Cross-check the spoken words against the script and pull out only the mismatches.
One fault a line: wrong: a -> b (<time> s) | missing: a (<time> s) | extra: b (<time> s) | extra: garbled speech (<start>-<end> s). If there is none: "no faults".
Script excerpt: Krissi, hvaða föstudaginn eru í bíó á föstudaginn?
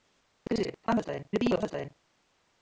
no faults